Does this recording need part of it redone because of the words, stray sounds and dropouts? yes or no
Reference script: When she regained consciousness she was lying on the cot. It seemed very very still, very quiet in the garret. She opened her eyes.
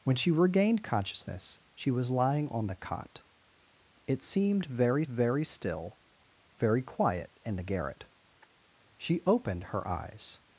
no